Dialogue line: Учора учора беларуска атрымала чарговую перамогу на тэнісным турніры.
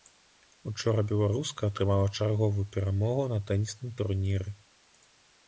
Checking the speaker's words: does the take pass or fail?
fail